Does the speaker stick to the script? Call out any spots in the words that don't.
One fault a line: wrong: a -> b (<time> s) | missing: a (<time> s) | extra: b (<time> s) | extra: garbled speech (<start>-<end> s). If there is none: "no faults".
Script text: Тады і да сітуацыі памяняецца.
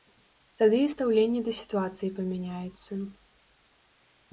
extra: стаўленне (0.9 s)